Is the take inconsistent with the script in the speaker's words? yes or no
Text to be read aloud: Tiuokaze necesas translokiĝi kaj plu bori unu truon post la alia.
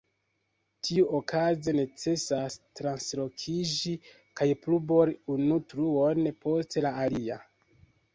no